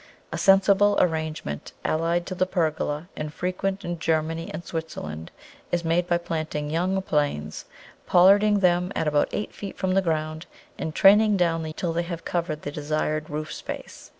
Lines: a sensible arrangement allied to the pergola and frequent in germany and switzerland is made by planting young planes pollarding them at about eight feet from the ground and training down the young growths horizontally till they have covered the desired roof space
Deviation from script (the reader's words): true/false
true